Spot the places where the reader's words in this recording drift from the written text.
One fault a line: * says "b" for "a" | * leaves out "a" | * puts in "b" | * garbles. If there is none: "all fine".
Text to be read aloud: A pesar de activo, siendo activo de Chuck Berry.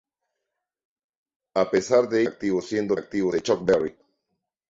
all fine